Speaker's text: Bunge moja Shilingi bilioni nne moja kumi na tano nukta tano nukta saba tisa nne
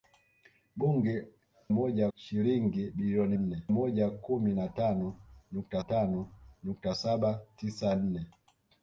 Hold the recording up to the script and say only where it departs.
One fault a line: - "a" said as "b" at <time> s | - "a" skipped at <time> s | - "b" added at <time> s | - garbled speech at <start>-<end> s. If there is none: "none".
none